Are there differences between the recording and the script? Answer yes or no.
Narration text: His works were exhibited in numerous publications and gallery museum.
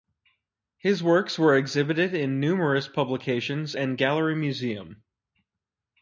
no